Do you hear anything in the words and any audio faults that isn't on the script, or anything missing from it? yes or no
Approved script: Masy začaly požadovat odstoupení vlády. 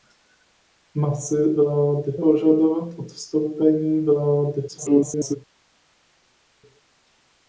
yes